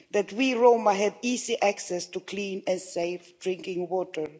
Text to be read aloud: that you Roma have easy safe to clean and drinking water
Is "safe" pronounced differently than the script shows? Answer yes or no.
yes